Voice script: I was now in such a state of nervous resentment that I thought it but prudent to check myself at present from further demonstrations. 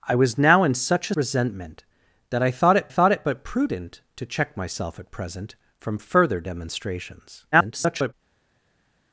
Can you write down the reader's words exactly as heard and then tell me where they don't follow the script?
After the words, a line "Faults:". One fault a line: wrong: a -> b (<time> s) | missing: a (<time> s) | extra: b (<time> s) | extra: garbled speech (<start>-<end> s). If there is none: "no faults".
I was now in such a resentment that I thought it thought it but prudent to check myself at present from further demonstrations. [garbled]
Faults:
missing: state of nervous (1.1 s)
extra: thought it (2.9 s)
extra: garbled speech (7.5-8.1 s)